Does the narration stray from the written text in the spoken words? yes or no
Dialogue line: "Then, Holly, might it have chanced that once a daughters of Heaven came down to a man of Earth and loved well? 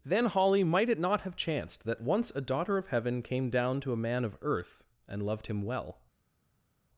yes